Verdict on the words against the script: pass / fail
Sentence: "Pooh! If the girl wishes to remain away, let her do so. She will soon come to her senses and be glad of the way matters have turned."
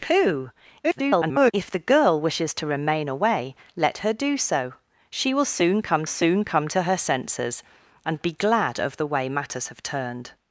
fail